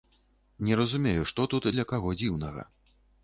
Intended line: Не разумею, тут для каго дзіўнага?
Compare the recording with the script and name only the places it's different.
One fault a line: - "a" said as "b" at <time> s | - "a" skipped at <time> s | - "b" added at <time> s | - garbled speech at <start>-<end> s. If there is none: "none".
- "што" added at 1.3 s